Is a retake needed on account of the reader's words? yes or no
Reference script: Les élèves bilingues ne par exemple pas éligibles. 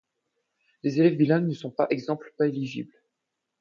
yes